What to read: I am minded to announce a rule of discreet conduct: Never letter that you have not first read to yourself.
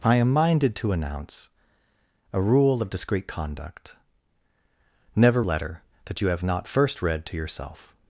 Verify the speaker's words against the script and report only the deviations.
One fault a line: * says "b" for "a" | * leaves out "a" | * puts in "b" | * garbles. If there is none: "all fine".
all fine